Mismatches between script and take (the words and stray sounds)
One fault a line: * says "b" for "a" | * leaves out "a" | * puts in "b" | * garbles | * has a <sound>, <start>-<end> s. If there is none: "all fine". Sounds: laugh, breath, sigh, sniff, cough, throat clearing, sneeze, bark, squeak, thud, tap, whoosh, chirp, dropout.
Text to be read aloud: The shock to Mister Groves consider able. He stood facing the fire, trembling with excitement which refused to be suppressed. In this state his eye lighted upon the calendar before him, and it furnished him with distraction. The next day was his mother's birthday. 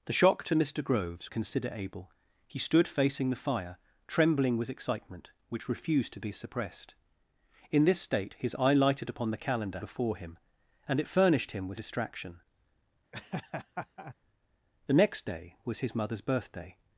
* has a laugh, 13.1-14.1 s